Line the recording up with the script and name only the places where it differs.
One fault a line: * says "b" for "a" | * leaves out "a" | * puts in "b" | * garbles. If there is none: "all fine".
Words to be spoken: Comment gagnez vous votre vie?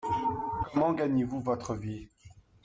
all fine